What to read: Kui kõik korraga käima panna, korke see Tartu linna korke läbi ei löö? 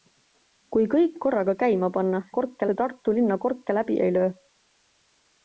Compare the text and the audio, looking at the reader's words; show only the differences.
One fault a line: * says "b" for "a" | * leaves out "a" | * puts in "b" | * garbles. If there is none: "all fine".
all fine